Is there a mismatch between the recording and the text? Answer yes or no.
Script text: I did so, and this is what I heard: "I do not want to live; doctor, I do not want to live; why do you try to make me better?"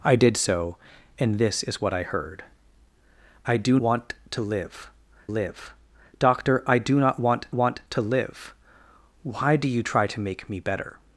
yes